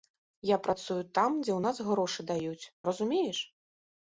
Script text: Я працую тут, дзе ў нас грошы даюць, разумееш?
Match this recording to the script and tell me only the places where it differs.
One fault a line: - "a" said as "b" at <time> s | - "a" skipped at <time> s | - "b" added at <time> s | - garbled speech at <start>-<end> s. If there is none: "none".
- "тут" said as "там" at 1.2 s